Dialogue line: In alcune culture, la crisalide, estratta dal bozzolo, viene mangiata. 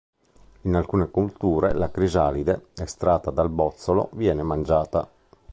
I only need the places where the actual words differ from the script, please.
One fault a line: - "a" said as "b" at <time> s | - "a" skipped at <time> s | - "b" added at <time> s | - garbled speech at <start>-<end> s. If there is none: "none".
none